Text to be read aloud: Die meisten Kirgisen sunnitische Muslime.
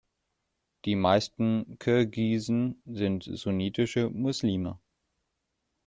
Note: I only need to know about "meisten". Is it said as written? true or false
true